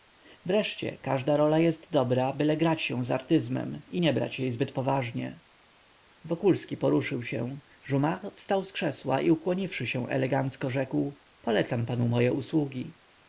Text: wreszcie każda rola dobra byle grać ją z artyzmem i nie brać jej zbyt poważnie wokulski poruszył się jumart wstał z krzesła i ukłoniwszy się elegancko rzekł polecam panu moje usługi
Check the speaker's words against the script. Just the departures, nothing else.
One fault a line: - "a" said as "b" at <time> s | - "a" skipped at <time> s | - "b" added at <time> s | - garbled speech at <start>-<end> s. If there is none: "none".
- "jest" added at 1.6 s